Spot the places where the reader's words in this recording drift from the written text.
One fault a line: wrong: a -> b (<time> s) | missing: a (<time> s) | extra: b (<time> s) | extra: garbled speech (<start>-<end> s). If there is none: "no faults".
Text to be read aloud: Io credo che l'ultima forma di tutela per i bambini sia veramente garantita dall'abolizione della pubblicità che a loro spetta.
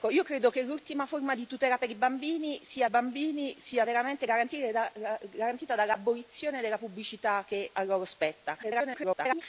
extra: bambini sia (2.9 s)
extra: garbled speech (8.6-9.4 s)